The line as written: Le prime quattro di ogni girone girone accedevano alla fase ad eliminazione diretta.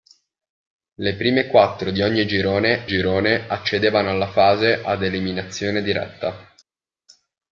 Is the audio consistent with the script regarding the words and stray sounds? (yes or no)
yes